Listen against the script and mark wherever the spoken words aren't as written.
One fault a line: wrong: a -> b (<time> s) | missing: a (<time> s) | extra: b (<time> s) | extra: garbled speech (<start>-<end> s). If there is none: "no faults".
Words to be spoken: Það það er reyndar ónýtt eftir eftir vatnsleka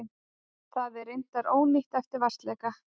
missing: það (1.0 s)
missing: eftir (2.3 s)